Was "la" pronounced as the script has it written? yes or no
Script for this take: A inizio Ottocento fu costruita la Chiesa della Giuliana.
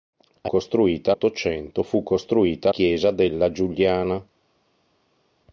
no